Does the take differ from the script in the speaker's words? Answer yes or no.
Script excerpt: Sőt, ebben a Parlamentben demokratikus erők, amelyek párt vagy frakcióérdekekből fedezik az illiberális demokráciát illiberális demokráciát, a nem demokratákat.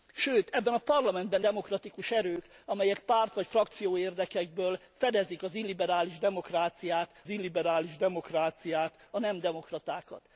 no